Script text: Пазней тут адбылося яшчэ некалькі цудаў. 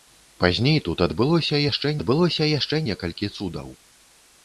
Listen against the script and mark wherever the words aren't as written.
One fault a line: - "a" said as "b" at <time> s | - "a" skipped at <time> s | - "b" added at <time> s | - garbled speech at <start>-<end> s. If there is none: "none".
- "адбылося яшчэ" added at 2.0 s